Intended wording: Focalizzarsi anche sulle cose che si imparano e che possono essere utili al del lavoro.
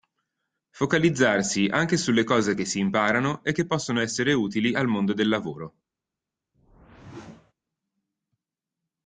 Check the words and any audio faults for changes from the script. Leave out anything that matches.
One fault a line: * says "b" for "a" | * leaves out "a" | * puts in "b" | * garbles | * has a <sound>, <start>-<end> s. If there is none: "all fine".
* puts in "mondo"
* has a whoosh, 6.5-7.5 s